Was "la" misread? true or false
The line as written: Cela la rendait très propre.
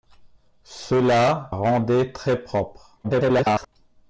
true